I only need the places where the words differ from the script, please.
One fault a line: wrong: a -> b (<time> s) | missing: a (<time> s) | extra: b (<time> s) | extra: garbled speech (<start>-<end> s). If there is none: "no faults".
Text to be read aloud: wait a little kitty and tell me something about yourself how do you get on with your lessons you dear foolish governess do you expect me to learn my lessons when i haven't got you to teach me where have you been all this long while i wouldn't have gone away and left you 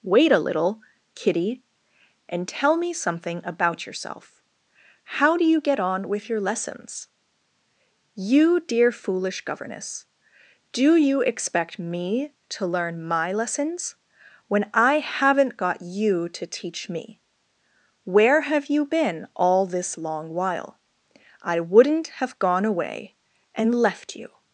no faults